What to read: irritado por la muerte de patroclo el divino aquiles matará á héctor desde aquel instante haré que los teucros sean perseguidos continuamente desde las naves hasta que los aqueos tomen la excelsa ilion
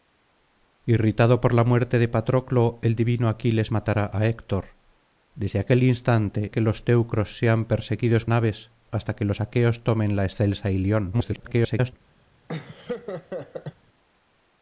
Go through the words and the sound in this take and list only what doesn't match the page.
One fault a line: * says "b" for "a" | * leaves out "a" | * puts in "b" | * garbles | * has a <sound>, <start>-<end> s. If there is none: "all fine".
* leaves out "haré"
* leaves out "continuamente desde las"
* garbles
* has a laugh, 12.5-13.8 s